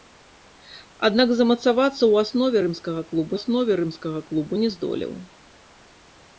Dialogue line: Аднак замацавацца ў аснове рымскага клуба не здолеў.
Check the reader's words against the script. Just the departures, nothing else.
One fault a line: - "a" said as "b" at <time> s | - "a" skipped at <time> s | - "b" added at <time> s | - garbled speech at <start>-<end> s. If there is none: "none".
- "аснове рымскага клуба" added at 3.4 s